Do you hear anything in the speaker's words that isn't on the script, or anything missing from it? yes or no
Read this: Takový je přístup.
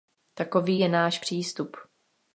yes